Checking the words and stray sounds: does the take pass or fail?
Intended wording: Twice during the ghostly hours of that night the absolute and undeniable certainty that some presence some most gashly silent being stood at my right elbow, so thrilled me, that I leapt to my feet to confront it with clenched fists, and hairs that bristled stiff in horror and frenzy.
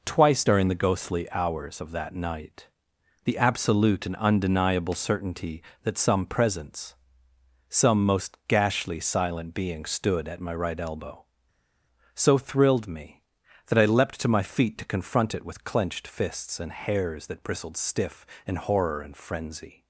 pass